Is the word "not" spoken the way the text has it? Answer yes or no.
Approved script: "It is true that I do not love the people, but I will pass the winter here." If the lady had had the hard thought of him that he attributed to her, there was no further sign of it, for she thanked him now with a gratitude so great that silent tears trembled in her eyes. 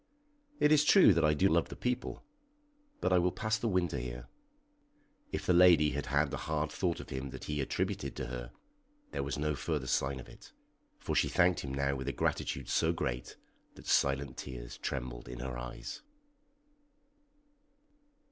no